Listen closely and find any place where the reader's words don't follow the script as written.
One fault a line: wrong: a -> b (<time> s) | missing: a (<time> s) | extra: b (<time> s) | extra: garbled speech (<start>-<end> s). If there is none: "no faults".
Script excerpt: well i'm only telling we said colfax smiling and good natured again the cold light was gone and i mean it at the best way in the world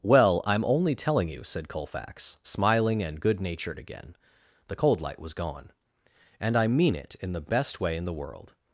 wrong: we -> you (1.3 s)
wrong: at -> in (7.2 s)